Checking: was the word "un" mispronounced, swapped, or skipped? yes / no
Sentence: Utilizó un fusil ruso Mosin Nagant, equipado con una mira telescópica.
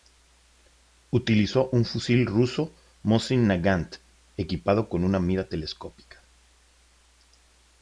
no